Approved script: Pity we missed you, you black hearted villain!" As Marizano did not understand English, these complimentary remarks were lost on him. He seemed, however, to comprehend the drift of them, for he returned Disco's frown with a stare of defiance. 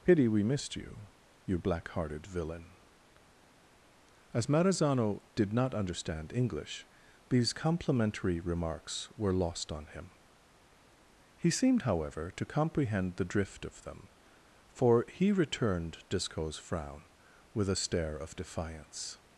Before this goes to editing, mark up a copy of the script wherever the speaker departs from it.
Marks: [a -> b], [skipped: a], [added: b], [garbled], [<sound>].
Pity we missed you, you black hearted villain!" As Marizano did not understand English, these complimentary remarks were lost on him. He seemed, however, to comprehend the drift of them, for he returned Disco's frown with a stare of defiance.